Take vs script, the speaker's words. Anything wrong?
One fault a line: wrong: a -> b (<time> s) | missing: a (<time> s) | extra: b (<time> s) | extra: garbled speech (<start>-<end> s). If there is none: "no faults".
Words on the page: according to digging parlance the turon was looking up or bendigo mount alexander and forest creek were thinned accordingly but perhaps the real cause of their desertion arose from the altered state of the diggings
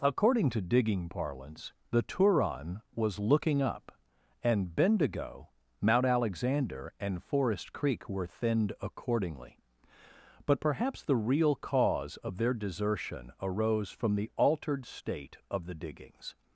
wrong: or -> and (4.4 s)